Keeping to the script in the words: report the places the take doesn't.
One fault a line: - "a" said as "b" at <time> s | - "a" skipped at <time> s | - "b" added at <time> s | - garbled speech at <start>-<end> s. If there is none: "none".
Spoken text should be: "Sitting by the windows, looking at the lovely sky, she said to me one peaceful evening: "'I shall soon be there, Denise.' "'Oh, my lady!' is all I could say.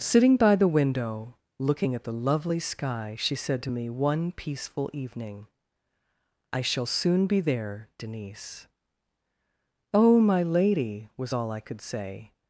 - "windows" said as "window" at 0.7 s
- "is" said as "was" at 11.2 s